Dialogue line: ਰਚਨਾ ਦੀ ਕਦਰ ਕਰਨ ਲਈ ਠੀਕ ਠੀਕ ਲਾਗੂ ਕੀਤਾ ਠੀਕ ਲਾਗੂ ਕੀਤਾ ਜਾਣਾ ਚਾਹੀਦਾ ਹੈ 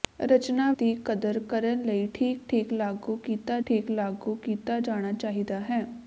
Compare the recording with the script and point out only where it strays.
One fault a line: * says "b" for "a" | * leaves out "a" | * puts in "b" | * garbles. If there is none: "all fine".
all fine